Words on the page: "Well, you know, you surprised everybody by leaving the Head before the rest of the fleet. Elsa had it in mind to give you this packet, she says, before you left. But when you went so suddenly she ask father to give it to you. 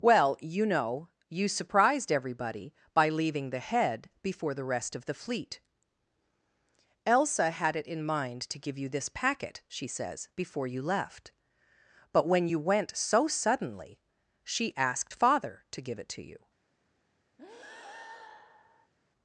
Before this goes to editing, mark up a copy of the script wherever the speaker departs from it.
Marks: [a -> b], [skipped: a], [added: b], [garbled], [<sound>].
"Well, you know, you surprised everybody by leaving the Head before the rest of the fleet. Elsa had it in mind to give you this packet, she says, before you left. But when you went so suddenly she [ask -> asked] father to give it to you. [breath]